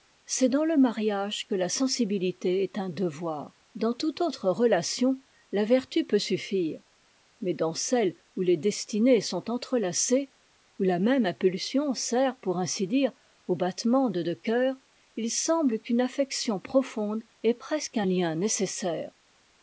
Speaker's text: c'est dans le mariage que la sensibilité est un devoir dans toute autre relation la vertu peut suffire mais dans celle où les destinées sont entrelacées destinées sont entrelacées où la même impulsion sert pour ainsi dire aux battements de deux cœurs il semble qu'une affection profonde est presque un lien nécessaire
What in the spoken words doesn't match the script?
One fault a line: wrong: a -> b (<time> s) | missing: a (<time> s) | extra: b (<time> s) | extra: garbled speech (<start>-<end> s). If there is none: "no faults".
missing: destinées sont entrelacées (10.3 s)